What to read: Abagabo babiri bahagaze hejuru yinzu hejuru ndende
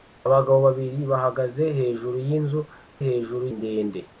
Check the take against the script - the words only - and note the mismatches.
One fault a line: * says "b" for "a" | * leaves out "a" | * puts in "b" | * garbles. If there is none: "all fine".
all fine